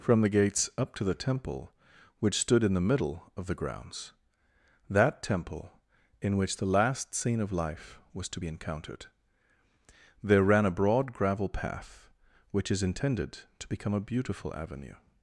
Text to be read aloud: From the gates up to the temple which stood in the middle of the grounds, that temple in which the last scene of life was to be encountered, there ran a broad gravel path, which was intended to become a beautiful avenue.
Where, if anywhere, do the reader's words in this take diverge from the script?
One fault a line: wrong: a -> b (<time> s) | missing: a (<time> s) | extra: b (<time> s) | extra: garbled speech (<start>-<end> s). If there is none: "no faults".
wrong: was -> is (12.7 s)